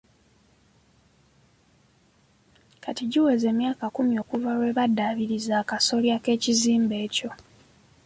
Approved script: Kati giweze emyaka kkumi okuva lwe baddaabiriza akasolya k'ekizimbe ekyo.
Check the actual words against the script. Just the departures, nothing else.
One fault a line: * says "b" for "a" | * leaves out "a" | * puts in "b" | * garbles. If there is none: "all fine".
all fine